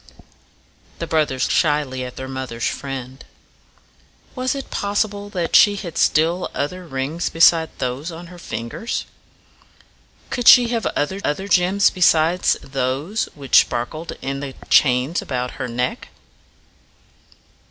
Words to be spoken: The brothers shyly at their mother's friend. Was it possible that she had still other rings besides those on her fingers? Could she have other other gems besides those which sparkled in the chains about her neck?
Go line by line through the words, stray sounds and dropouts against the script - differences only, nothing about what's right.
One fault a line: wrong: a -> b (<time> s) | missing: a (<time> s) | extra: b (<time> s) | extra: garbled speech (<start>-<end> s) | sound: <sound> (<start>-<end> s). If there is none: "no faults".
no faults